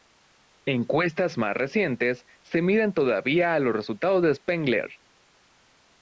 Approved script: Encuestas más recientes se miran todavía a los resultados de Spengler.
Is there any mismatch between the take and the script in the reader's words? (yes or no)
no